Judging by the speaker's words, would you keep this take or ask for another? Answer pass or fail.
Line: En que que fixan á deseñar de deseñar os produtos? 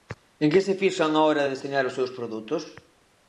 fail